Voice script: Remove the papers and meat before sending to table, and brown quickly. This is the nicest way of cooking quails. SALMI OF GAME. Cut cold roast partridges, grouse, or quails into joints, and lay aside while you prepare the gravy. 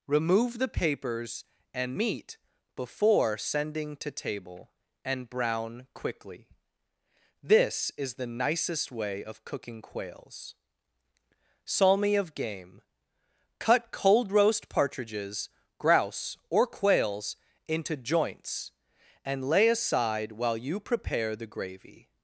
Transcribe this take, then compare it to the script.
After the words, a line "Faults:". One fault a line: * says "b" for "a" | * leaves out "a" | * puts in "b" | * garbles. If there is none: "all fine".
Remove the papers and meat before sending to table, and brown quickly. This is the nicest way of cooking quails. SALMI OF GAME. Cut cold roast partridges, grouse, or quails into joints, and lay aside while you prepare the gravy.
Faults:
all fine